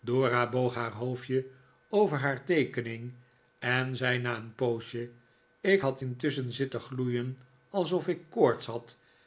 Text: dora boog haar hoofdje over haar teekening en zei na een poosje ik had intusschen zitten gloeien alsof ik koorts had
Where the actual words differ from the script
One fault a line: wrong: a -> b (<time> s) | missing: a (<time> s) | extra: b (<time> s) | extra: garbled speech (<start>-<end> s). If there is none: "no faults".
no faults